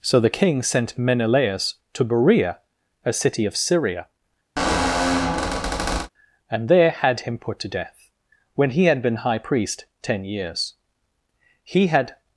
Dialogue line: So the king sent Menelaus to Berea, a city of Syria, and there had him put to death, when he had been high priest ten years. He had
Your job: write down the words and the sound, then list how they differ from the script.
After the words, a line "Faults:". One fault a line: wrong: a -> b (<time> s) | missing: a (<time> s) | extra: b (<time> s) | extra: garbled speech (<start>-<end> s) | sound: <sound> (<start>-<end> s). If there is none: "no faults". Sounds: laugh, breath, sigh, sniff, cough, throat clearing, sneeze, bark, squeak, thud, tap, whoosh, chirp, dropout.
So the king sent Menelaus to Berea, a city of Syria, and there had him put to death, when he had been high priest ten years. He had
Faults:
sound: squeak (4.6-6.1 s)